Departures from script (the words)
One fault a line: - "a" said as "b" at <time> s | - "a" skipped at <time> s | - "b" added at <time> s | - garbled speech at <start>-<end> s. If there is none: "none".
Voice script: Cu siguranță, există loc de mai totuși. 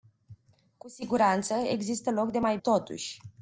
none